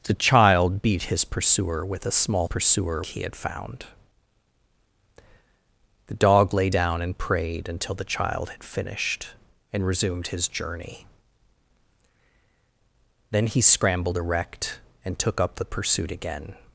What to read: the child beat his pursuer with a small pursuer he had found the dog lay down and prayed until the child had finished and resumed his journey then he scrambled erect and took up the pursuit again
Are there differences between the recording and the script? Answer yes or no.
no